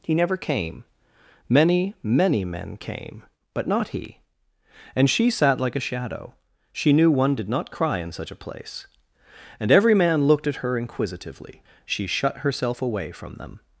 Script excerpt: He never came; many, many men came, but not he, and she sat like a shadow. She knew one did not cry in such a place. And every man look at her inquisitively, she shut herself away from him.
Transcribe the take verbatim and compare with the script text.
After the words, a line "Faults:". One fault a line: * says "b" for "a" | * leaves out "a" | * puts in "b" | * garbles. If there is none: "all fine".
He never came; many, many men came, but not he, and she sat like a shadow. She knew one did not cry in such a place. And every man looked at her inquisitively, she shut herself away from them.
Faults:
* says "looked" for "look"
* says "them" for "him"